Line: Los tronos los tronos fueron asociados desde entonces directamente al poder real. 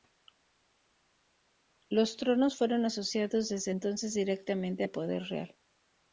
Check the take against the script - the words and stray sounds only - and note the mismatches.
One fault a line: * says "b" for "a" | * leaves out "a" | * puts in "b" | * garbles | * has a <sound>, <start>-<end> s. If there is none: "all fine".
* leaves out "los tronos"